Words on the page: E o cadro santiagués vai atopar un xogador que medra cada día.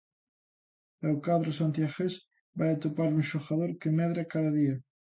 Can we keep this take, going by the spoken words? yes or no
yes